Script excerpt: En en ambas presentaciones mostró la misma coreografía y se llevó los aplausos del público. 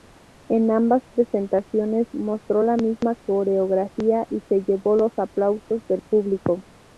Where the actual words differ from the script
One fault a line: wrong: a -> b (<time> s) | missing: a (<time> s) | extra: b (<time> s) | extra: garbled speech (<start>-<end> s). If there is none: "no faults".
missing: en (0.7 s)